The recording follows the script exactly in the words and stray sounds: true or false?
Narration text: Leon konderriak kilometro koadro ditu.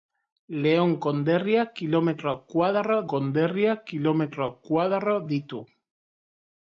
false